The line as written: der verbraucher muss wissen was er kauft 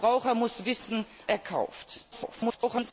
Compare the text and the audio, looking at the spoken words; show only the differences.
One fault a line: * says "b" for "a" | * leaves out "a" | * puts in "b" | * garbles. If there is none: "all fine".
* leaves out "was"
* garbles